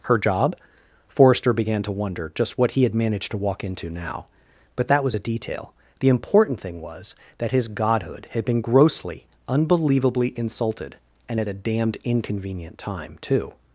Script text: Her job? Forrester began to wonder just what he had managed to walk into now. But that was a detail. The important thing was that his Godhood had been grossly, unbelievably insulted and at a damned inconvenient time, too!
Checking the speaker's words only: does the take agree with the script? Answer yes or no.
yes